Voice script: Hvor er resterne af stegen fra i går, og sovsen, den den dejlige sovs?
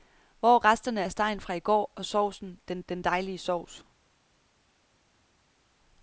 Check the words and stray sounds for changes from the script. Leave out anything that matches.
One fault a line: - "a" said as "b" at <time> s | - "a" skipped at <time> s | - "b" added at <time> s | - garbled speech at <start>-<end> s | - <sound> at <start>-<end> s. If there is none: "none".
none